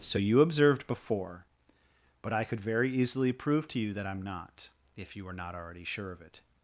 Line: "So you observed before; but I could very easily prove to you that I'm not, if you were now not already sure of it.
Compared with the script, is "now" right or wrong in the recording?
wrong